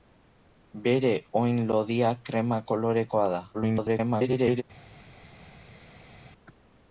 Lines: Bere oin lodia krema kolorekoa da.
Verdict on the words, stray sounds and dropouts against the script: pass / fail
fail